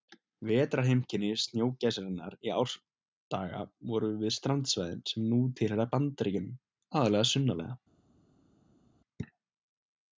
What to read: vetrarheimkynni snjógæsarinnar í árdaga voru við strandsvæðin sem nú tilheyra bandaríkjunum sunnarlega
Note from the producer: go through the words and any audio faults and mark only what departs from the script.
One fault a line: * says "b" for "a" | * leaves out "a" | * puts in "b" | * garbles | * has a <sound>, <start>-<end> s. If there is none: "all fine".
* puts in "aðallega"